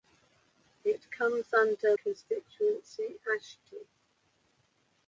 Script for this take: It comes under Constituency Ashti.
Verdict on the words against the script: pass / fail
pass